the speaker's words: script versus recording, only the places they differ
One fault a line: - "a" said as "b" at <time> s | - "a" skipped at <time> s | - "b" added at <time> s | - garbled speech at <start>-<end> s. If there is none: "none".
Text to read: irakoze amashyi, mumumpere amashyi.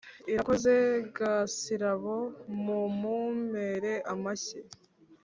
- "amashyi" said as "gasirabo" at 1.2 s